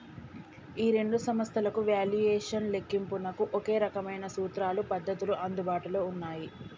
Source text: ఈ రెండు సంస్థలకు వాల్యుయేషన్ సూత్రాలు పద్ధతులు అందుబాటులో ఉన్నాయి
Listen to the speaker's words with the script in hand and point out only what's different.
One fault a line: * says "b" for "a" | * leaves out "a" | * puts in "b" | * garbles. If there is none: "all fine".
* puts in "లెక్కింపునకు ఒకే రకమైన"